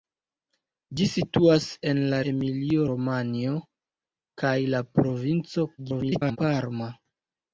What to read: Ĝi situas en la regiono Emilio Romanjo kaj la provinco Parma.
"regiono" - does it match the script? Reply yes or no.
no